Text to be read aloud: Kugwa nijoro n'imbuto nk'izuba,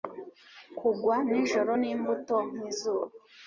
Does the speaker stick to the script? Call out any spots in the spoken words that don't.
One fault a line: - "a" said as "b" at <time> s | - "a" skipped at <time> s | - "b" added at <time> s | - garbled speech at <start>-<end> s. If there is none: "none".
none